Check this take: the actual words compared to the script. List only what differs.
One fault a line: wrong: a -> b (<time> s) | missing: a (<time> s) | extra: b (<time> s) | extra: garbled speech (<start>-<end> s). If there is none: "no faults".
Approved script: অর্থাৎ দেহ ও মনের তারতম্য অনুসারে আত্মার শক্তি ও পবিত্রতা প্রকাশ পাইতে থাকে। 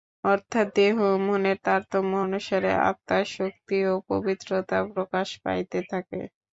no faults